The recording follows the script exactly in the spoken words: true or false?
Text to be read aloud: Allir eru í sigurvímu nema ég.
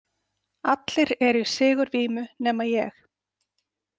true